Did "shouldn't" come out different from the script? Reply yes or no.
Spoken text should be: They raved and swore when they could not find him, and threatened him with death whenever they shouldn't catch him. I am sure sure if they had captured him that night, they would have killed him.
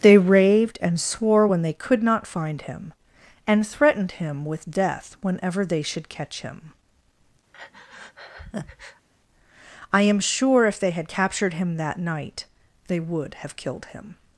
yes